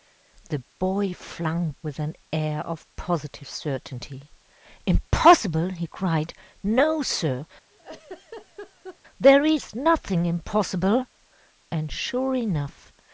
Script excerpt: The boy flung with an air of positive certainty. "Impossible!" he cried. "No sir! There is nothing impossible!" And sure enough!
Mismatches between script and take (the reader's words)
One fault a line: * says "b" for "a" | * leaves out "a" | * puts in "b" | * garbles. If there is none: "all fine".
all fine